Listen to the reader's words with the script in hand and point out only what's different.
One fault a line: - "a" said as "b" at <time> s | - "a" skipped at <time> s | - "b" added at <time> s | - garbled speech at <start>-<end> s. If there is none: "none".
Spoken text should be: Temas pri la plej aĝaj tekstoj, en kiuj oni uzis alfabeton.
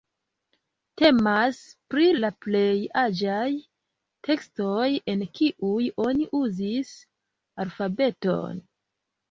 none